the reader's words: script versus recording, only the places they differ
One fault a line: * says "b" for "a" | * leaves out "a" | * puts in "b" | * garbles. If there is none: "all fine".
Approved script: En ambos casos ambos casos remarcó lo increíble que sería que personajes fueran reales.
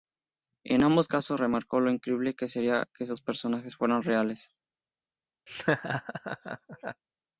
* leaves out "ambos casos"
* puts in "esos"